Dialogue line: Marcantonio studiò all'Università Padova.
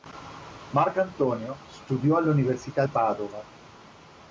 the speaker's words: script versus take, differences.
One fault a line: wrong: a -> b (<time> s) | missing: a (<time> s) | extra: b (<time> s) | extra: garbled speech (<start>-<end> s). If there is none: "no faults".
no faults